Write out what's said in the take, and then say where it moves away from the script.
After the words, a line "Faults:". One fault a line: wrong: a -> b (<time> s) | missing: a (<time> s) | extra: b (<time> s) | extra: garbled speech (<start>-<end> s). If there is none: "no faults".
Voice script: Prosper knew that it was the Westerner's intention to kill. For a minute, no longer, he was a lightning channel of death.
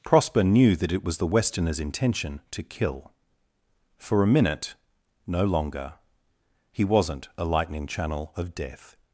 Prosper knew that it was the Westerner's intention to kill. For a minute, no longer, he wasn't a lightning channel of death.
Faults:
wrong: was -> wasn't (6.8 s)